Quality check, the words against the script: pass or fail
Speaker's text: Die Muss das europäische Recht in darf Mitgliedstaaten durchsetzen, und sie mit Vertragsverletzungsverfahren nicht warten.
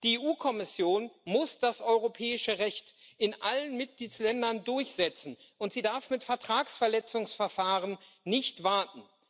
fail